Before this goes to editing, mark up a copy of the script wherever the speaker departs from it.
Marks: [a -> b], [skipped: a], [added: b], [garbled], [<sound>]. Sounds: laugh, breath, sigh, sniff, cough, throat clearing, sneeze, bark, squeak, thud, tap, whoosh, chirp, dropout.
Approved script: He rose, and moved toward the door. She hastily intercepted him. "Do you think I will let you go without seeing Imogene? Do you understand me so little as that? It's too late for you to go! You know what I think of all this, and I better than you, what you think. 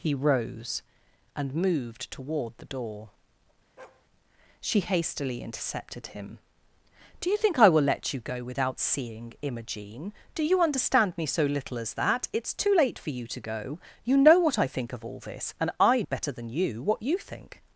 He rose, and moved toward the door. [bark] She hastily intercepted him. "Do you think I will let you go without seeing Imogene? Do you understand me so little as that? It's too late for you to go! You know what I think of all this, and I better than you, what you think.